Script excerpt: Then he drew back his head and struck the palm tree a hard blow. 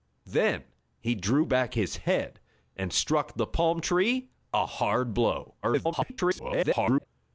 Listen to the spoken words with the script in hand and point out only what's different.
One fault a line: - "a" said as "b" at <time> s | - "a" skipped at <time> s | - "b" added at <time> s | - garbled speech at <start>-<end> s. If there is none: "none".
- garbled speech at 5.6-7.1 s